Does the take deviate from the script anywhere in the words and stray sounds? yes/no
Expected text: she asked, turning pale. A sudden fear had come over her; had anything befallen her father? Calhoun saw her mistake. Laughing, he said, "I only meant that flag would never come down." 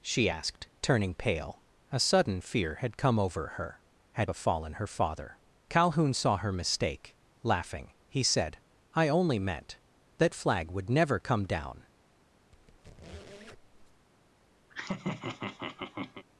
yes